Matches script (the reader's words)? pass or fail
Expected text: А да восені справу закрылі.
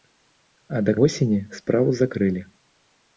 pass